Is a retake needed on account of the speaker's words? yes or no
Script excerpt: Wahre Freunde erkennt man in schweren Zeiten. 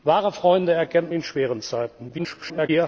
yes